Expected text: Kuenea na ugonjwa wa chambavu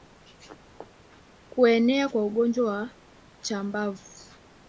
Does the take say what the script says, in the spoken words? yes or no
no